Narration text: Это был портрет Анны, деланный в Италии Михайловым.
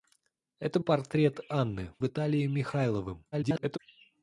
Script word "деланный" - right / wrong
wrong